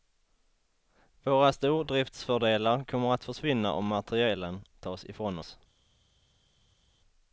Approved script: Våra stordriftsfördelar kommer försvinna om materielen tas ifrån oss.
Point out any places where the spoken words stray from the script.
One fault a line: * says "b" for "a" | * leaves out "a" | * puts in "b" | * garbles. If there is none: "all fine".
* puts in "att"